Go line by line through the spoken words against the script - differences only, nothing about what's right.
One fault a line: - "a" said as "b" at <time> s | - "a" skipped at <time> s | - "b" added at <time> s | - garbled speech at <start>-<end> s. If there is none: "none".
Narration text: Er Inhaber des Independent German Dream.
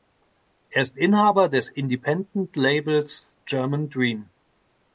- "ist" added at 0.8 s
- "Labels" added at 2.5 s